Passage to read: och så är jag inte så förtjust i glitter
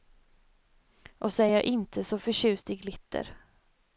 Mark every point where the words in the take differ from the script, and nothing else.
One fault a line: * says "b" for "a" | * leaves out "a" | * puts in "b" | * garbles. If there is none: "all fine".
all fine